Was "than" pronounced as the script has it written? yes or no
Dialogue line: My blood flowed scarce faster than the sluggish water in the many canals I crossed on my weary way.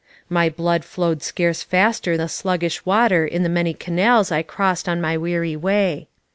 no